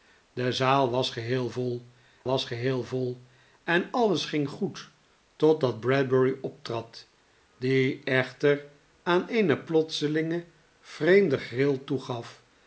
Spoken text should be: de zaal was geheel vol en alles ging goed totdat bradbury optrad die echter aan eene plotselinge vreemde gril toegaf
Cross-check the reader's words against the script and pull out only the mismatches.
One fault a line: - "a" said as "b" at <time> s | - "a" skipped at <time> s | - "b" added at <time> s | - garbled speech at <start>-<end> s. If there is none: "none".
- "was geheel vol" added at 2.2 s